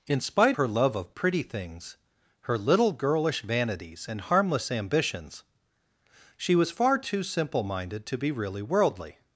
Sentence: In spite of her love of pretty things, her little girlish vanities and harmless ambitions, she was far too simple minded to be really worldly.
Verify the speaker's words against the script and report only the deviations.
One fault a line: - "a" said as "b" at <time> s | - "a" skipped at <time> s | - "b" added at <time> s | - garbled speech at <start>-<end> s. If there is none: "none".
- "of" skipped at 0.6 s